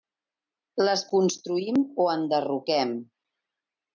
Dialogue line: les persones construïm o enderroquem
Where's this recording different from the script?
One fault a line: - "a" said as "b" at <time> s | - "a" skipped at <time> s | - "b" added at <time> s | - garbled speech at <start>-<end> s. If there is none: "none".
- "persones" skipped at 1.0 s